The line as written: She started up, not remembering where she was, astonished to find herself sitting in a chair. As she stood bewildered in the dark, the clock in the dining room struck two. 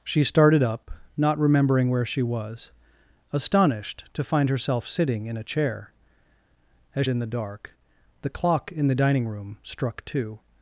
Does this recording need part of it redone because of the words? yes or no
yes